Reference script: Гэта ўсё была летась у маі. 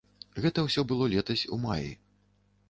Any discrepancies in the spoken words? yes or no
yes